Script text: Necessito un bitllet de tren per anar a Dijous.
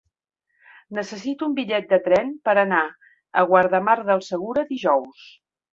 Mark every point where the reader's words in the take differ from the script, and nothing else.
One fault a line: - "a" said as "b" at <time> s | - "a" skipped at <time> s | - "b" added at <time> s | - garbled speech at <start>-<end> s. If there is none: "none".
- "Guardamar del Segura" added at 3.5 s